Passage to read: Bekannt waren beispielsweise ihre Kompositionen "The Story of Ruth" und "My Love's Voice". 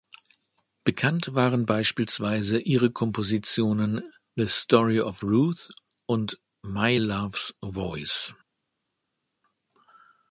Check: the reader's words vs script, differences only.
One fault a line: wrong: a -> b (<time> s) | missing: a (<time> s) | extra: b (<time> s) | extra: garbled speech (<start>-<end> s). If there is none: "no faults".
no faults